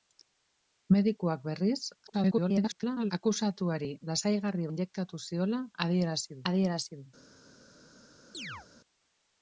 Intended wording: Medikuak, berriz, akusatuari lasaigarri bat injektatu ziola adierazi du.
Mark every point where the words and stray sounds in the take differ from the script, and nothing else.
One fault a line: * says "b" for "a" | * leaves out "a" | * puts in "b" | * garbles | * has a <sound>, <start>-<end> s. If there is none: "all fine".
* garbles
* leaves out "bat"
* puts in "adierazi"
* has a chirp, 8.3-8.7 s